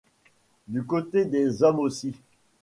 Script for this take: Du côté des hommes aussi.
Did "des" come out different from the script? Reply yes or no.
no